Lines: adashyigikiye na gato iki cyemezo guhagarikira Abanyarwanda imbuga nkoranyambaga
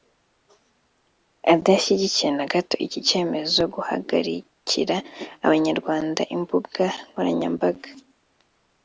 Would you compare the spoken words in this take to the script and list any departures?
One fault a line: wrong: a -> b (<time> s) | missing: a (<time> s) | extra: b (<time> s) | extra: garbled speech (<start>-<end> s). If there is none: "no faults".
no faults